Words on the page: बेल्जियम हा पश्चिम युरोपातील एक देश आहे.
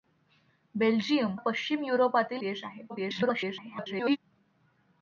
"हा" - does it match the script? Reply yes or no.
no